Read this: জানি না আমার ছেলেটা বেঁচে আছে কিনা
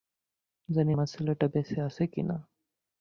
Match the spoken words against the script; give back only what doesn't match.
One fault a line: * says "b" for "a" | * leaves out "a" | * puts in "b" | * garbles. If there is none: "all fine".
* leaves out "না"